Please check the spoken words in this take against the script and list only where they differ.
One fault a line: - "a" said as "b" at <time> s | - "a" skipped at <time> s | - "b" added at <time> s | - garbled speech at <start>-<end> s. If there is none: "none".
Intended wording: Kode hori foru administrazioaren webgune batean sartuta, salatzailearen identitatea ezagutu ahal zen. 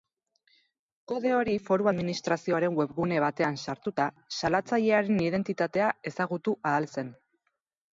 none